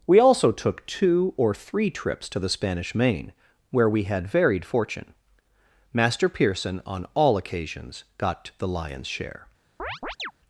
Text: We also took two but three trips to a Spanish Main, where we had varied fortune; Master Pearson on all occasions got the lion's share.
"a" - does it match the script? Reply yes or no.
no